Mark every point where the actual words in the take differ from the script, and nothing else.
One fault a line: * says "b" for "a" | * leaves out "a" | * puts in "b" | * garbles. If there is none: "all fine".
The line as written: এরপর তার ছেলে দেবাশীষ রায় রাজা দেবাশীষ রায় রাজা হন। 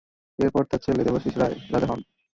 * leaves out "দেবাশীষ রায় রাজা"